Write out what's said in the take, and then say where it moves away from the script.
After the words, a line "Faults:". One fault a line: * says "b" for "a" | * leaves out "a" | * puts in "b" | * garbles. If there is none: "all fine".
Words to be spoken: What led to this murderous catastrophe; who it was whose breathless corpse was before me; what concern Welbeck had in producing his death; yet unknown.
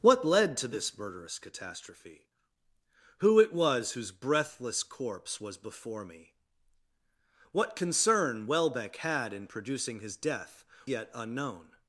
What led to this murderous catastrophe; who it was whose breathless corpse was before me; what concern Welbeck had in producing his death; yet unknown.
Faults:
all fine